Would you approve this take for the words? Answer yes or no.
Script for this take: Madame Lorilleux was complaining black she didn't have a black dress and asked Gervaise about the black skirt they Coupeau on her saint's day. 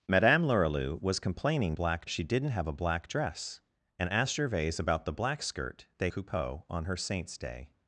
yes